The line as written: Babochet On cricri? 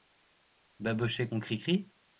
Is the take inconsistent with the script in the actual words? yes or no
no